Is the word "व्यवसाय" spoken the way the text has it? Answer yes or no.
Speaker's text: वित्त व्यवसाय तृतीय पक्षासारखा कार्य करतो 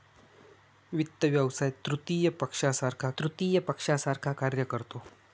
yes